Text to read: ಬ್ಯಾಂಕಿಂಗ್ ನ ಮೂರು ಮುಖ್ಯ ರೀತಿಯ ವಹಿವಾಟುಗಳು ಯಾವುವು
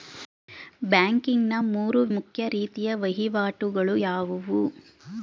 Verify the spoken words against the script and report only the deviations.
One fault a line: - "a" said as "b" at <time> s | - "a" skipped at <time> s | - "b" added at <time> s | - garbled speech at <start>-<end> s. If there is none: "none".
none